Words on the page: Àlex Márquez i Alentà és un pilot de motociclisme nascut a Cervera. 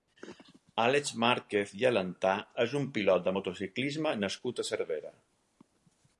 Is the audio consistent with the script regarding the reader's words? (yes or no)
yes